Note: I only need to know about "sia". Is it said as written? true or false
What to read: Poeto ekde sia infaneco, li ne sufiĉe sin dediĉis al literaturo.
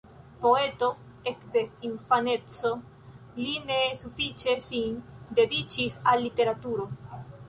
false